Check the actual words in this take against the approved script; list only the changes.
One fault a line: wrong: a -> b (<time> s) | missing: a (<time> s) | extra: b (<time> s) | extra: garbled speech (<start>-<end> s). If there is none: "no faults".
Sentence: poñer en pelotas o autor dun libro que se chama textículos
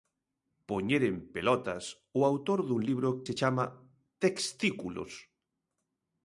missing: que (3.1 s)